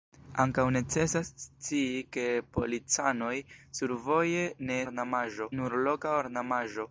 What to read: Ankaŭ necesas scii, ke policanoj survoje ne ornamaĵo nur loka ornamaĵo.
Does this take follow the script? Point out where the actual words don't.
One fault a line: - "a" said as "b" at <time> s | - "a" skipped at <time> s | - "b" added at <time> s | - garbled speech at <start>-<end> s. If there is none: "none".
none